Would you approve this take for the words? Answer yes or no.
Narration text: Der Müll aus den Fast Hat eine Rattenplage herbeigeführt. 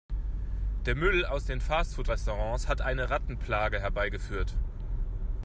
no